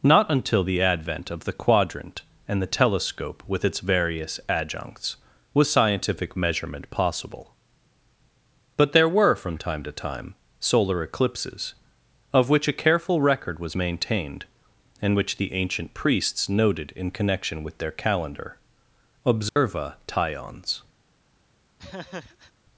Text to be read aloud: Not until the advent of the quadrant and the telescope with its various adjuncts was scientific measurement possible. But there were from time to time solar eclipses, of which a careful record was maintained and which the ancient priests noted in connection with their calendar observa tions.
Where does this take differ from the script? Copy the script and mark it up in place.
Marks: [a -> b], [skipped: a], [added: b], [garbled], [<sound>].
Not until the advent of the quadrant and the telescope with its various adjuncts was scientific measurement possible. But there were from time to time solar eclipses, of which a careful record was maintained and which the ancient priests noted in connection with their calendar observa [dropout] tions. [laugh]